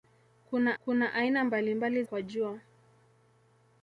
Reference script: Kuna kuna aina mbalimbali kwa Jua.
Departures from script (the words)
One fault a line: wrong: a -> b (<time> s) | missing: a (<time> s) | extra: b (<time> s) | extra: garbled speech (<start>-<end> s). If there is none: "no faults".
no faults